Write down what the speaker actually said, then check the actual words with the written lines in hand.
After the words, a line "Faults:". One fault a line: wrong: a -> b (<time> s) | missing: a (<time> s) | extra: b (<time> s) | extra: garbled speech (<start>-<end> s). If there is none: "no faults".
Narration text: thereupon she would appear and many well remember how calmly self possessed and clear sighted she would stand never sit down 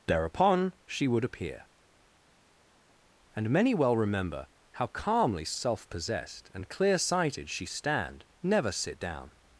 thereupon she would appear and many well remember how calmly self possessed and clear sighted she stand never sit down
Faults:
missing: would (7.6 s)